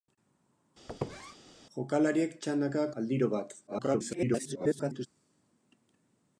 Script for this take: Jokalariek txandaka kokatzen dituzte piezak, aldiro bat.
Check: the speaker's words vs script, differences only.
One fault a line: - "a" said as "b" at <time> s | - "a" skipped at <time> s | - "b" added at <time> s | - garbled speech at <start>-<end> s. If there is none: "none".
- "kokatzen dituzte piezak" skipped at 2.8 s
- garbled speech at 3.7-5.1 s